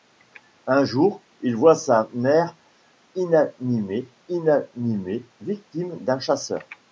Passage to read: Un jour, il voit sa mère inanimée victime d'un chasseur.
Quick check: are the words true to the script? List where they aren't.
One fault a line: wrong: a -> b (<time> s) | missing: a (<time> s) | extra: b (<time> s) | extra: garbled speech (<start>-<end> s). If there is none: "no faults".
extra: inanimée (4.3 s)